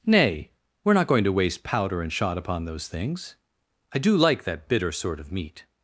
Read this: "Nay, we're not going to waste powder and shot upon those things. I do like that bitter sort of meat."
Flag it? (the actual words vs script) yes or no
no